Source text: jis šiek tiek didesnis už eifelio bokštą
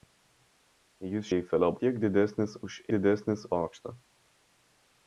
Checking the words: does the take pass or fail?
fail